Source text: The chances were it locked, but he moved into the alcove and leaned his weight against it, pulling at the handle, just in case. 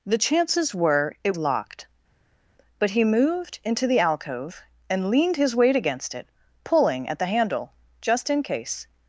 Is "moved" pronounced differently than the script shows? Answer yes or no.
no